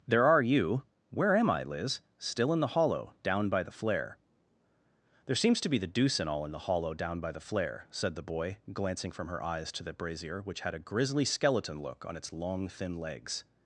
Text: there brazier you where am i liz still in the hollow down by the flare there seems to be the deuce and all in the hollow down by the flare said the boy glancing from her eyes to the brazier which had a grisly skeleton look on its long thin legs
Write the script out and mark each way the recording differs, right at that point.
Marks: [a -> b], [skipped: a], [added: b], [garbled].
there [brazier -> are] you where am i liz still in the hollow down by the flare there seems to be the deuce and all in the hollow down by the flare said the boy glancing from her eyes to the brazier which had a grisly skeleton look on its long thin legs